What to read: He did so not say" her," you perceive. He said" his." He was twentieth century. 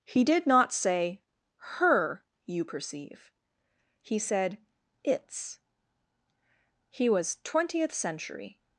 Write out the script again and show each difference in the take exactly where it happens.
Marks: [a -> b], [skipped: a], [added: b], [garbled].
He did [skipped: so] not say" her," you perceive. He said" [his." -> its] He was twentieth century.